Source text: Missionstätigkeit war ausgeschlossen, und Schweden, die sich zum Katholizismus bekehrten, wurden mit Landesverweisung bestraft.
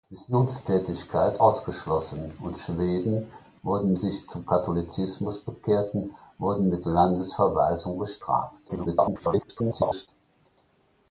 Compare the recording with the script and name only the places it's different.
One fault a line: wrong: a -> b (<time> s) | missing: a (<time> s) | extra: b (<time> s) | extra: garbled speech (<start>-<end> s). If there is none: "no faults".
missing: war (1.4 s)
wrong: die -> wurden (3.6 s)
extra: garbled speech (8.7-10.1 s)